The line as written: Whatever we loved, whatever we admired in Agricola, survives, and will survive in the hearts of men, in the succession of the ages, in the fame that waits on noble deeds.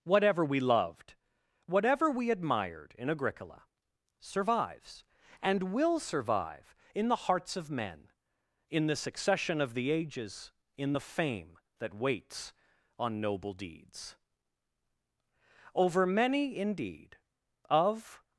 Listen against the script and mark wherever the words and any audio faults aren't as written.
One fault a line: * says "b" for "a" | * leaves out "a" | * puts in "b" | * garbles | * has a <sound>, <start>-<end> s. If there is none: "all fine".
* puts in "Over many indeed of"